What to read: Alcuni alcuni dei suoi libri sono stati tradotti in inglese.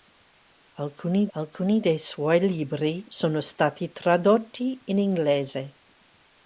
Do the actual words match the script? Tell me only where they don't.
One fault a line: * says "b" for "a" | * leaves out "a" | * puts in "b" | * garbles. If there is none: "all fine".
all fine